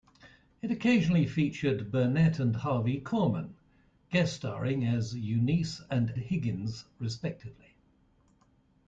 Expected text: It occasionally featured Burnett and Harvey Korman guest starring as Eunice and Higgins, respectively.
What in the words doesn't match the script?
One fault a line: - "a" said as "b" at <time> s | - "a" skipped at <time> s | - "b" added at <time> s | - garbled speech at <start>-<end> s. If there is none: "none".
none